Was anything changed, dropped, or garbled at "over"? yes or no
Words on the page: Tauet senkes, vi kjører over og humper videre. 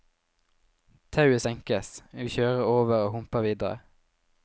no